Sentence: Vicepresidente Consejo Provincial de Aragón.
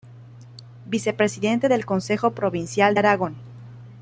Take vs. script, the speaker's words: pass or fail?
fail